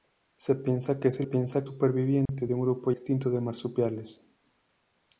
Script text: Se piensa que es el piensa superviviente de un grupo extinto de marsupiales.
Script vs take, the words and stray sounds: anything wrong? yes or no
yes